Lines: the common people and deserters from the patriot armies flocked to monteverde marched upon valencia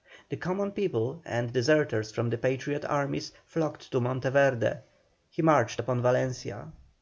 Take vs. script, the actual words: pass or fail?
fail